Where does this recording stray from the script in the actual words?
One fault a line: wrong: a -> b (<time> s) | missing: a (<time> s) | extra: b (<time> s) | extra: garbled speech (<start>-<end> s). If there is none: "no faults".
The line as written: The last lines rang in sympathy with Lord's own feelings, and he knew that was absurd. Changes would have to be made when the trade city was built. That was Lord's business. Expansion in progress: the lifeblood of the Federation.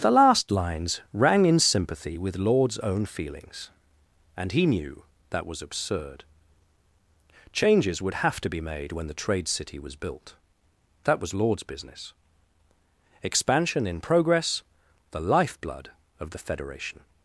no faults